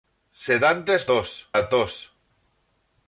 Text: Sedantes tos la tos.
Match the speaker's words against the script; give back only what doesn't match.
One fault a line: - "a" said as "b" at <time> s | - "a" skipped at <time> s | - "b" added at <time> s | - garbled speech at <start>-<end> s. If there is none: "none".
none